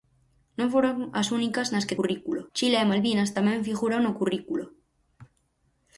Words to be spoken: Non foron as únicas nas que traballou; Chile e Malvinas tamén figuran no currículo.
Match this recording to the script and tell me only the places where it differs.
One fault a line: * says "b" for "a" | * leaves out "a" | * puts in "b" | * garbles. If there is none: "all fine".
* says "currículo" for "traballou"